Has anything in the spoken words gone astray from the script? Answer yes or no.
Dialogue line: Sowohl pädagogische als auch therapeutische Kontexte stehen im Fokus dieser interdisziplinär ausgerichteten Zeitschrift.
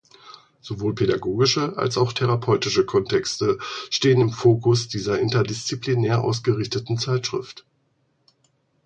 no